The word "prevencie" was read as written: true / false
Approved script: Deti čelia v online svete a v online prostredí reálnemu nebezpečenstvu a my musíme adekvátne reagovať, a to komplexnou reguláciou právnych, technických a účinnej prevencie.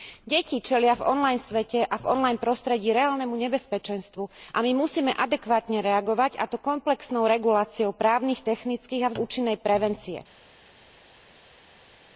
true